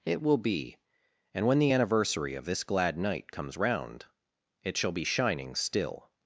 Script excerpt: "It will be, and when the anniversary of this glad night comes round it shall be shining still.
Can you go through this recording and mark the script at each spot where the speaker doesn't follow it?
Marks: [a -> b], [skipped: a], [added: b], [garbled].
"It will be, and when the anniversary of this glad night comes round it shall be shining still.